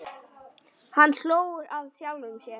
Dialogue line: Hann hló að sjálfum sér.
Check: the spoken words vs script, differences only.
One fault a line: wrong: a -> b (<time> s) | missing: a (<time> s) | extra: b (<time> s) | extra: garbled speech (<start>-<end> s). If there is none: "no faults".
no faults